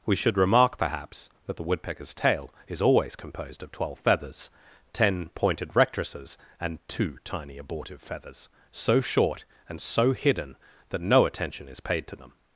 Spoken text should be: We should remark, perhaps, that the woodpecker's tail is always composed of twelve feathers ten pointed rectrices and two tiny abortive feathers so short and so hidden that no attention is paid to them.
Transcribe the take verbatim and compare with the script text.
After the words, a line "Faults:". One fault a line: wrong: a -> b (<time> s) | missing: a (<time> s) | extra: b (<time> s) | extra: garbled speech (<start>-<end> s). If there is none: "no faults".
We should remark, perhaps, that the woodpecker's tail is always composed of twelve feathers ten pointed rectrices and two tiny abortive feathers so short and so hidden that no attention is paid to them.
Faults:
no faults